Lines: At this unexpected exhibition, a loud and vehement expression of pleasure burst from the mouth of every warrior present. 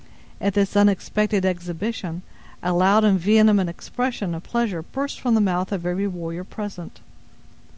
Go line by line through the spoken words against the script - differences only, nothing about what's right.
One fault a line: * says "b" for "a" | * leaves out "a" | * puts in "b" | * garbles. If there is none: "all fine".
all fine